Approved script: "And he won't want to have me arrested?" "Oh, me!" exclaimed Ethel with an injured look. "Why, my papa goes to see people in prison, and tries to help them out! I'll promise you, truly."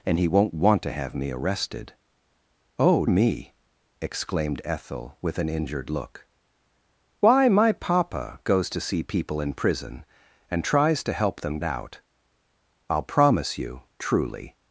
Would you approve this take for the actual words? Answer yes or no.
yes